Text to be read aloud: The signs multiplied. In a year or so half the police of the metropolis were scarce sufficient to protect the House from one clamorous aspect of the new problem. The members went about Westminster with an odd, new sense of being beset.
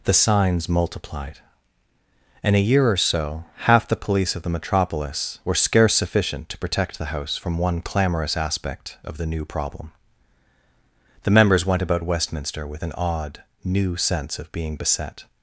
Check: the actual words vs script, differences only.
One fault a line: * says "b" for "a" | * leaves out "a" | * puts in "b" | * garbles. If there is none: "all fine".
all fine